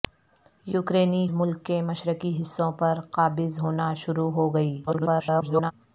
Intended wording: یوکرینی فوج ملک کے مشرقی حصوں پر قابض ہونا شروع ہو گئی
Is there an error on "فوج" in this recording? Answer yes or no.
yes